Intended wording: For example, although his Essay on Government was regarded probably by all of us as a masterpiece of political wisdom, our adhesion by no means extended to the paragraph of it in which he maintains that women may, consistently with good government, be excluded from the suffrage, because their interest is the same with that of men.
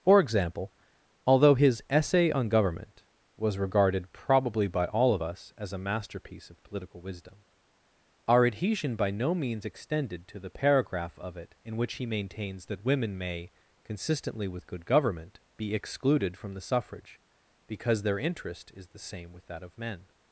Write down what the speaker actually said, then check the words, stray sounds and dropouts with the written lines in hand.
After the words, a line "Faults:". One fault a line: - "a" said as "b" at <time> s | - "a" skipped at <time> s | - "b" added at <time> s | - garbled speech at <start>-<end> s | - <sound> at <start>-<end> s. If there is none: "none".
For example, although his Essay on Government was regarded probably by all of us as a masterpiece of political wisdom, our adhesion by no means extended to the paragraph of it in which he maintains that women may, consistently with good government, be excluded from the suffrage, because their interest is the same with that of men.
Faults:
none